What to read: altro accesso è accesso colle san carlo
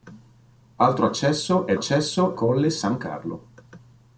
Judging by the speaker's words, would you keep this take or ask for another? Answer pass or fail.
pass